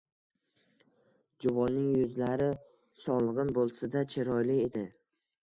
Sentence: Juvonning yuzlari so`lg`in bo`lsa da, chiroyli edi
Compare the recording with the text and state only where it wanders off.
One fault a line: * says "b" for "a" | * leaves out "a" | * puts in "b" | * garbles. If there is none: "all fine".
all fine